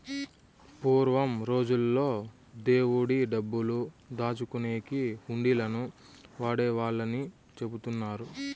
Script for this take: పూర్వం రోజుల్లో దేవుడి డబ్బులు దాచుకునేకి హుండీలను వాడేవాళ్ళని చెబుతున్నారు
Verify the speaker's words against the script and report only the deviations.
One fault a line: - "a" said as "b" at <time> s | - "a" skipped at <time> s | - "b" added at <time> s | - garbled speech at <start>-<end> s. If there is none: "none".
none